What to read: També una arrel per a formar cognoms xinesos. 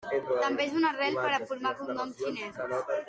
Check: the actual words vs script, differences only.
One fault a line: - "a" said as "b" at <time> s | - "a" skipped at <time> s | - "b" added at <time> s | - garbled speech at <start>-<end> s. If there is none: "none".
- "és" added at 0.6 s